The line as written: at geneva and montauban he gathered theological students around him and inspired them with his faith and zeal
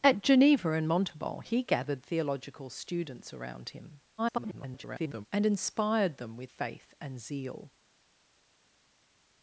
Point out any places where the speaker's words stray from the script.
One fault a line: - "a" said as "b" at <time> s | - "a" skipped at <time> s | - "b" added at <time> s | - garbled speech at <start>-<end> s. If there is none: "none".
- garbled speech at 4.2-5.3 s
- "his" skipped at 6.5 s